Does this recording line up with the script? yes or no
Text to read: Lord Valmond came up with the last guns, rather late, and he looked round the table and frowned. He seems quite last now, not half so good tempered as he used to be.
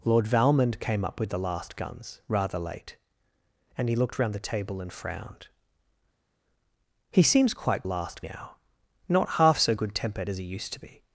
yes